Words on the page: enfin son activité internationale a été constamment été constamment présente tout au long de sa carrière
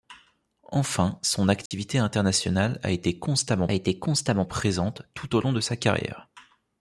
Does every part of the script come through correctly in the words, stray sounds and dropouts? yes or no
no